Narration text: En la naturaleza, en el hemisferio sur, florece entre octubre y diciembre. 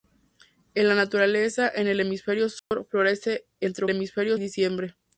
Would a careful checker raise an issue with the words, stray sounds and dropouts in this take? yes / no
yes